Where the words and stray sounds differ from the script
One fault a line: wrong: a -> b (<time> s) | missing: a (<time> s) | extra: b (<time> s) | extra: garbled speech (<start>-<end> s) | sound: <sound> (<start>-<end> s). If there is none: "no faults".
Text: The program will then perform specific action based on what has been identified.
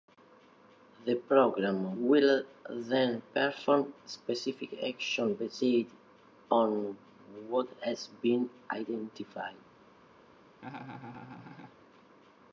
sound: laugh (10.6-11.8 s)